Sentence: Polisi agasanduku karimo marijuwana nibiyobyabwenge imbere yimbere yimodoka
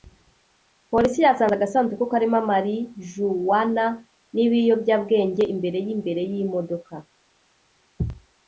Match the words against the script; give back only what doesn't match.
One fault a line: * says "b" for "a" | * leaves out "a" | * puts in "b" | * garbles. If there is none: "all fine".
* puts in "yasanze"